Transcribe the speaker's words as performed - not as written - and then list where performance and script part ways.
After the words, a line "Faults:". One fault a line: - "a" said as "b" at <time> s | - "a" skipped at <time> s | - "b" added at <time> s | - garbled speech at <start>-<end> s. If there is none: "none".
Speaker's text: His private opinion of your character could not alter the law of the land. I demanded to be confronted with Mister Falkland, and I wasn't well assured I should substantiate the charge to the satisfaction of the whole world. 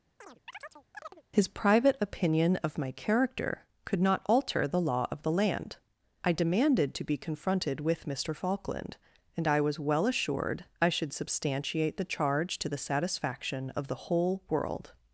His private opinion of my character could not alter the law of the land. I demanded to be confronted with Mister Falkland, and I was well assured I should substantiate the charge to the satisfaction of the whole world.
Faults:
- "your" said as "my" at 2.8 s
- "wasn't" said as "was" at 9.6 s